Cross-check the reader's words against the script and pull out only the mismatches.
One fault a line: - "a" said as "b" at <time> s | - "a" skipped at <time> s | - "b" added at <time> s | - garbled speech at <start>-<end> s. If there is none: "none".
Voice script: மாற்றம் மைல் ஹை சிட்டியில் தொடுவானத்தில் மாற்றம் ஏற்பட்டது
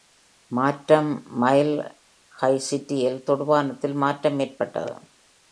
none